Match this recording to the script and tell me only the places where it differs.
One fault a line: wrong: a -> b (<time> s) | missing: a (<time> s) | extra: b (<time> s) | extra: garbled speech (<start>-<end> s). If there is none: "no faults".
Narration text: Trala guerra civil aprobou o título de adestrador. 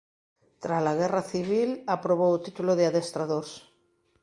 no faults